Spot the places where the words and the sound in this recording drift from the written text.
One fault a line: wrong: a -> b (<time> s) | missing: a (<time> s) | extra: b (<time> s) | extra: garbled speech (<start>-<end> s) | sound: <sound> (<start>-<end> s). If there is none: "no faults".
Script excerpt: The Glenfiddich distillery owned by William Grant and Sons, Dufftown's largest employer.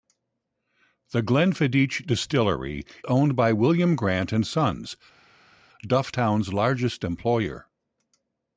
no faults